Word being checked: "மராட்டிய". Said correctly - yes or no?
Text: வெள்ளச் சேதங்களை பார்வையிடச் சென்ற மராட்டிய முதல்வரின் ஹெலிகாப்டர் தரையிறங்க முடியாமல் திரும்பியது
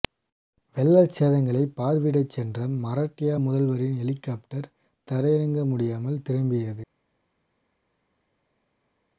yes